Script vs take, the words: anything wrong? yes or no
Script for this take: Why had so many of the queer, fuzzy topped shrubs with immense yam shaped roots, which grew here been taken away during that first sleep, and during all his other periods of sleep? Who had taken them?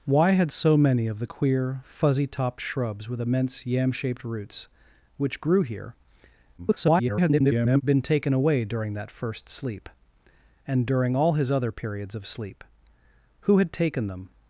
yes